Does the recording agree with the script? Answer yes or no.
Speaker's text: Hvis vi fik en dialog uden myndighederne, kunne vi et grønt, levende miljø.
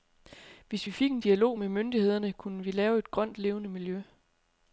no